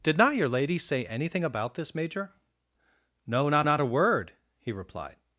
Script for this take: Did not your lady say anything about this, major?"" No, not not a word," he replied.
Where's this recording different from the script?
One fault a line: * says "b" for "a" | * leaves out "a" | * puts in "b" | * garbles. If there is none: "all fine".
all fine